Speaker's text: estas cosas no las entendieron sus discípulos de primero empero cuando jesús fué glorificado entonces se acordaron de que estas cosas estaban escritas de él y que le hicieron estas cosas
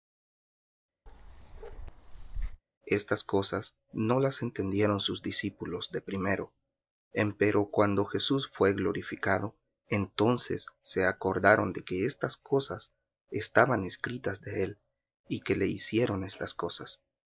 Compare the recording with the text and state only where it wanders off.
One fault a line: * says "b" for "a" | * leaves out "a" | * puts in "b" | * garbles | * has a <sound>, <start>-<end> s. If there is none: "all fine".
* has a bark, 1.1-2.6 s